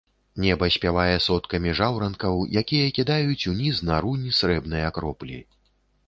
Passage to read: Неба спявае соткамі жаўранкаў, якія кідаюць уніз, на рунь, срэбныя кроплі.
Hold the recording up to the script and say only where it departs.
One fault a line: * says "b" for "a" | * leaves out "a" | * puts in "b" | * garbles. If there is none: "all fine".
all fine